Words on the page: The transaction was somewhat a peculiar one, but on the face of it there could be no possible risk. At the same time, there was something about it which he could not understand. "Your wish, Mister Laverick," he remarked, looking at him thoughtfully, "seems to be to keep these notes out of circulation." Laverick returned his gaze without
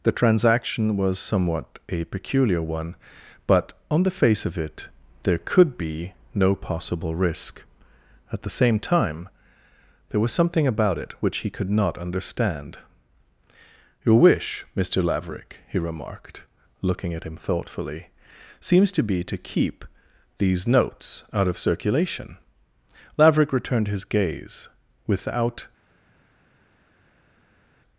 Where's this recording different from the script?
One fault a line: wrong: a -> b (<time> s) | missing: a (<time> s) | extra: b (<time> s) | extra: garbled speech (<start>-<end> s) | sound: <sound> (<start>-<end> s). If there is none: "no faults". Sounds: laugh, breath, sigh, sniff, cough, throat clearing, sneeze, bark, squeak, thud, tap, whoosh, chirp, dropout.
no faults